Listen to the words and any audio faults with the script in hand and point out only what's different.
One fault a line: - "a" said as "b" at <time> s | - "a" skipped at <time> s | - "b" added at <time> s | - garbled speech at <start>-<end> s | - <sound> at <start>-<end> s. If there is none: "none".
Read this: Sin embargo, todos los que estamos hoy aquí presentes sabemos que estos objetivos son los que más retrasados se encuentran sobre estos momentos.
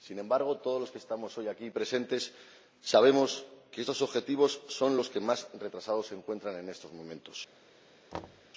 - "sobre" said as "en" at 6.6 s
- thud at 8.1-8.5 s